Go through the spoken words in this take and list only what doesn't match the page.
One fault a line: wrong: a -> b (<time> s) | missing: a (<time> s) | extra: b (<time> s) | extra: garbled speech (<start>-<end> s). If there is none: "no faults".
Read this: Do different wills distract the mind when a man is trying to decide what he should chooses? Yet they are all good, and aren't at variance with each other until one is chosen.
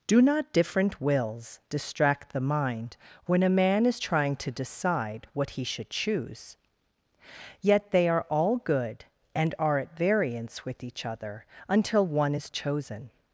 extra: not (0.2 s)
wrong: chooses -> choose (5.9 s)
wrong: aren't -> are (9.6 s)